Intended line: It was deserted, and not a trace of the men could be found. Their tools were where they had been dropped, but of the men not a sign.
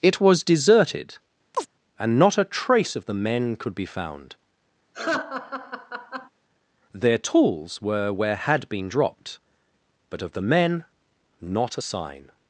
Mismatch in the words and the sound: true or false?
true